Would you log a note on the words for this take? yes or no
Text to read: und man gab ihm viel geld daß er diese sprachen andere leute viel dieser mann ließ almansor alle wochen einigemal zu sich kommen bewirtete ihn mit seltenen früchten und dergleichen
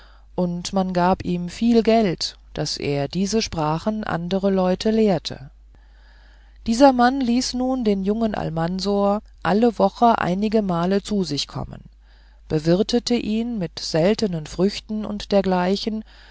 yes